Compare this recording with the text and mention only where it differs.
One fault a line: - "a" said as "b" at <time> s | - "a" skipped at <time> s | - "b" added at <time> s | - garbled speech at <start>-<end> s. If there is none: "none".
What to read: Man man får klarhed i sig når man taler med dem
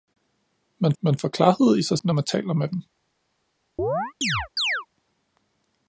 none